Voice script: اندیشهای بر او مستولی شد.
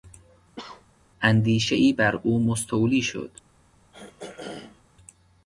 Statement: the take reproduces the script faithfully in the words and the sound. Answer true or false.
false